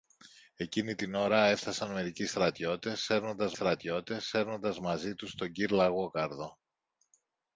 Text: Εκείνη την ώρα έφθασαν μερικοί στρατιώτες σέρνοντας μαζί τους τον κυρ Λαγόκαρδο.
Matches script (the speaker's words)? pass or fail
fail